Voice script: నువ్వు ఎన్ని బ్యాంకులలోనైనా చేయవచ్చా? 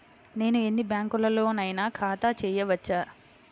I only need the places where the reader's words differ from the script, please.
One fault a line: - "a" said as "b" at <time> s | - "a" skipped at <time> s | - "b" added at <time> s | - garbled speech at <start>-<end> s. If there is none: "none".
- "నువ్వు" said as "నేను" at 0.3 s
- "ఖాతా" added at 1.9 s